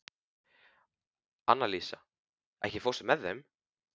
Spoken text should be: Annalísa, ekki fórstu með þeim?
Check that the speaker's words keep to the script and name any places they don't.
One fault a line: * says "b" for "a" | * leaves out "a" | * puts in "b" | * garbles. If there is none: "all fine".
all fine